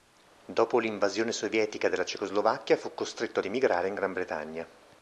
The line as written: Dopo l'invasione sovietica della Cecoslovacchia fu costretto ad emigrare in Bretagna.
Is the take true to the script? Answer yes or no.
no